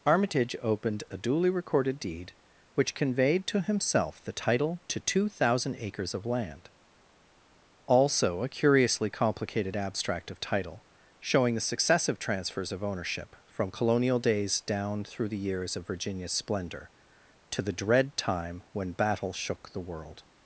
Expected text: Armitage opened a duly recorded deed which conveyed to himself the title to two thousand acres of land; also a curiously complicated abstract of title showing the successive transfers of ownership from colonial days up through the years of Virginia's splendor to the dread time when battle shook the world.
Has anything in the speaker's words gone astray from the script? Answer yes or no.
yes